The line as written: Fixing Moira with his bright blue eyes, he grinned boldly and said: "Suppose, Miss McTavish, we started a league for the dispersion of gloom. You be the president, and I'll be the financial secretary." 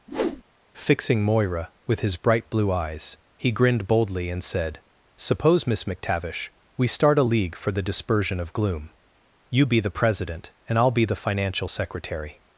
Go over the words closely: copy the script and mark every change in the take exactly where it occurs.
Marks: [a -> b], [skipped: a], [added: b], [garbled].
Fixing Moira with his bright blue eyes, he grinned boldly and said: "Suppose, Miss McTavish, we [started -> start] a league for the dispersion of gloom. You be the president, and I'll be the financial secretary."